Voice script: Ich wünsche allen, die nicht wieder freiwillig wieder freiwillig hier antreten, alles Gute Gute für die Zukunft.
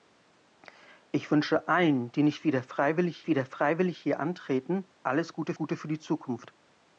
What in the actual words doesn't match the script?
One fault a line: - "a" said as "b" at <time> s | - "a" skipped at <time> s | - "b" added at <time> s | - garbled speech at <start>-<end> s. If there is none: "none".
none